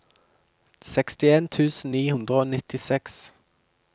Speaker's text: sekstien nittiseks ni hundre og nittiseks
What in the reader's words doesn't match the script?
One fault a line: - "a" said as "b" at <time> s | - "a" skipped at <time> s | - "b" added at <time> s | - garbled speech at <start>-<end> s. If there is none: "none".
- "nittiseks" said as "tusen" at 1.6 s